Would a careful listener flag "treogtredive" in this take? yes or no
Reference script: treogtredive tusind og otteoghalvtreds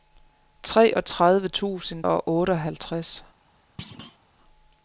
no